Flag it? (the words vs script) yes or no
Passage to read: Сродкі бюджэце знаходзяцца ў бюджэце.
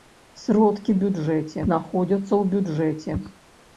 no